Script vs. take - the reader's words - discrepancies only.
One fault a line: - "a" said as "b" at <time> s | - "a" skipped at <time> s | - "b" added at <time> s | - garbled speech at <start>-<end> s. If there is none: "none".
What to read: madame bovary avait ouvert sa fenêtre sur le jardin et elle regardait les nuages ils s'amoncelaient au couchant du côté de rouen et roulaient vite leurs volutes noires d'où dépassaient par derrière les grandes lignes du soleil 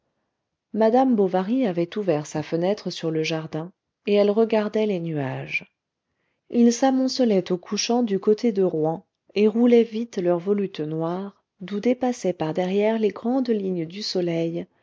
none